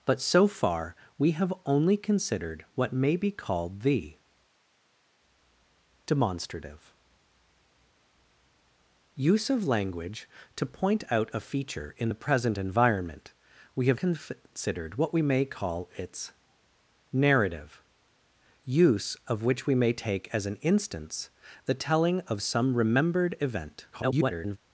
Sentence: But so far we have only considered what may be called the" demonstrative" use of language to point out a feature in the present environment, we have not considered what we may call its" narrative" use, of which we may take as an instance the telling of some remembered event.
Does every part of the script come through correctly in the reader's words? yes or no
no